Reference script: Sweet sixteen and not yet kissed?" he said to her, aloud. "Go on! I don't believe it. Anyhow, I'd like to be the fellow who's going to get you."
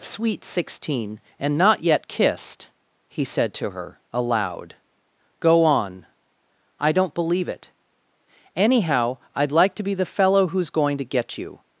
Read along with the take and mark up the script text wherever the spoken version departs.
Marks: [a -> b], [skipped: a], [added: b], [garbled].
Sweet sixteen and not yet kissed?" he said to her, aloud. "Go on! I don't believe it. Anyhow, I'd like to be the fellow who's going to get you."